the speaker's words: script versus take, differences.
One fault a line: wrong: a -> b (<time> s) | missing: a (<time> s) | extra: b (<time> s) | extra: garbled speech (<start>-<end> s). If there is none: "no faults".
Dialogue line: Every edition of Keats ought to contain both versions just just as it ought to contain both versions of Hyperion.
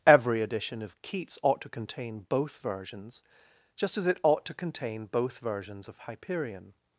missing: just (4.0 s)